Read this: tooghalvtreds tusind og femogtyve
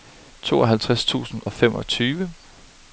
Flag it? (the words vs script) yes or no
no